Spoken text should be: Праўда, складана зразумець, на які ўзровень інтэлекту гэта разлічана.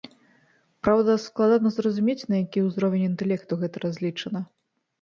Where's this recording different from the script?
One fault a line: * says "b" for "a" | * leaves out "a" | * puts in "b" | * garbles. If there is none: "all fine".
all fine